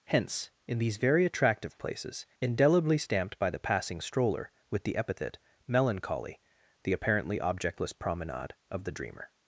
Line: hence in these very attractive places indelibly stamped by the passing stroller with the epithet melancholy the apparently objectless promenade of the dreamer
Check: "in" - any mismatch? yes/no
no